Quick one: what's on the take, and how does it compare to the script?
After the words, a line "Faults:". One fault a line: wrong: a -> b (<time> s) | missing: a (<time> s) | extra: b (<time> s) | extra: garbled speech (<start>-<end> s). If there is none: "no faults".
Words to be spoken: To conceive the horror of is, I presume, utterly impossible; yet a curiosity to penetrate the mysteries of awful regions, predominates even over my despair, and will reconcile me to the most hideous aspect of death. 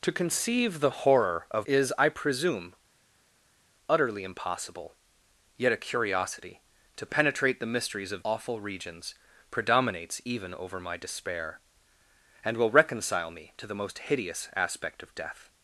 To conceive the horror of is, I presume, utterly impossible; yet a curiosity to penetrate the mysteries of awful regions, predominates even over my despair, and will reconcile me to the most hideous aspect of death.
Faults:
no faults